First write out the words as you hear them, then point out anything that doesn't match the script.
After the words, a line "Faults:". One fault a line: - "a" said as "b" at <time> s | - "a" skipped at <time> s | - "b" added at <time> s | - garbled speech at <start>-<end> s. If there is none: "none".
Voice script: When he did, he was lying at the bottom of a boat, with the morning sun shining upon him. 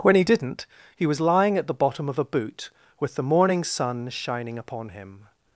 When he didn't, he was lying at the bottom of a boot, with the morning sun shining upon him.
Faults:
- "did" said as "didn't" at 0.2 s
- "boat" said as "boot" at 2.2 s